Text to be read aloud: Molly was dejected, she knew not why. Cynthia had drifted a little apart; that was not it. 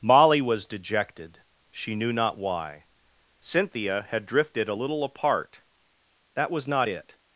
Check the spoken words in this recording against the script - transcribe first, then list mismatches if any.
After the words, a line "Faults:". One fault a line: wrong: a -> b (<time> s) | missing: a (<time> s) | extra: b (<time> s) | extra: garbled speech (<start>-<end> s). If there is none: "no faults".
Molly was dejected, she knew not why. Cynthia had drifted a little apart; that was not it.
Faults:
no faults